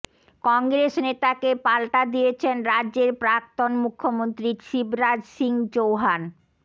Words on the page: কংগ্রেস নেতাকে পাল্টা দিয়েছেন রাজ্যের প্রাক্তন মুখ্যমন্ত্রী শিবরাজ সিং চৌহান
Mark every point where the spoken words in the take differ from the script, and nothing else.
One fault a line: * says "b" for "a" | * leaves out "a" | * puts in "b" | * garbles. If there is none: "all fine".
all fine